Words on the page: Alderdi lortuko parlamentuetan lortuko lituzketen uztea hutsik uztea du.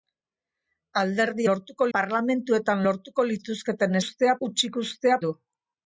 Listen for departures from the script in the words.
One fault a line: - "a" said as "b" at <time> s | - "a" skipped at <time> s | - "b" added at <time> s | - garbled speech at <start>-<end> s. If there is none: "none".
none